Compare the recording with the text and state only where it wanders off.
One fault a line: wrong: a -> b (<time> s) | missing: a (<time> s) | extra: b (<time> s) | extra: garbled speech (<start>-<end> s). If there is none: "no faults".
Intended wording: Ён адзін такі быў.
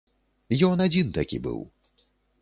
no faults